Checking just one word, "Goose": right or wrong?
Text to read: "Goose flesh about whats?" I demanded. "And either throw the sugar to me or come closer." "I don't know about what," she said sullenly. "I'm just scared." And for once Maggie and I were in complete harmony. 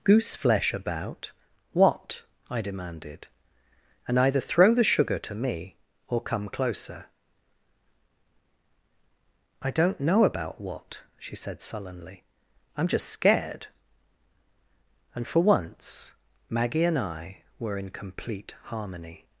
right